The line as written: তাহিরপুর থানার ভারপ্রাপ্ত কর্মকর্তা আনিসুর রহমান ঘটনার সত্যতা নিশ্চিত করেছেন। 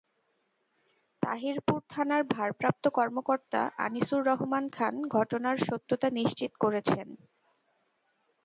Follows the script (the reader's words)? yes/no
no